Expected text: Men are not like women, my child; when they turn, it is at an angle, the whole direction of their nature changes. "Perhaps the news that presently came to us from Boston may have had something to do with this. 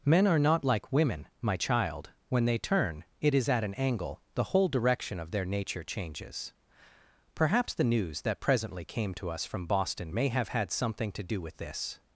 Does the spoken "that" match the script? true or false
true